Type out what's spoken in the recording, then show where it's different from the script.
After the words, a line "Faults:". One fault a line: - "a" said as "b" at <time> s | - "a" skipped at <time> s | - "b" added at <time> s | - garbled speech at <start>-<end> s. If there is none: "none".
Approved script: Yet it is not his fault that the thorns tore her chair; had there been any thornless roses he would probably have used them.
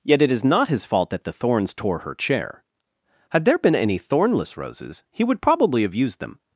Yet it is not his fault that the thorns tore her chair; had there been any thornless roses he would probably have used them.
Faults:
none